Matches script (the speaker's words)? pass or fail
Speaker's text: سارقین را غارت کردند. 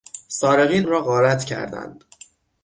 pass